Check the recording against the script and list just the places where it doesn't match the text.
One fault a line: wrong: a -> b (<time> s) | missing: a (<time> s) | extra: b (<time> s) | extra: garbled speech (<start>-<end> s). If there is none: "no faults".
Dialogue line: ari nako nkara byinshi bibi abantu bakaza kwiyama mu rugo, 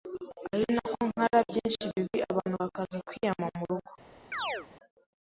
no faults